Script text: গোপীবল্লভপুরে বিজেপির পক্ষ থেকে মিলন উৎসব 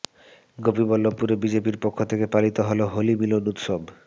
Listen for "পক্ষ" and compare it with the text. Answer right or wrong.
right